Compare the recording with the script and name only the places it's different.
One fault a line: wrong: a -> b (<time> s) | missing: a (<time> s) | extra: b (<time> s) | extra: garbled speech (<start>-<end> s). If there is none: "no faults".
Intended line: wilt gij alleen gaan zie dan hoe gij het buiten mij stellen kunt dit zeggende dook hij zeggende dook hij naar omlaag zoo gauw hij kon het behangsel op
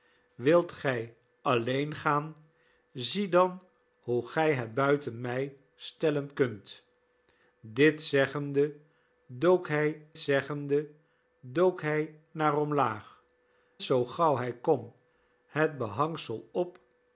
no faults